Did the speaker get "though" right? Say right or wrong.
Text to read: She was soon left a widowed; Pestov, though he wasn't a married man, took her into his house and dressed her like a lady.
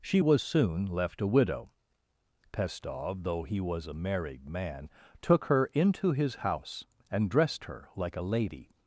right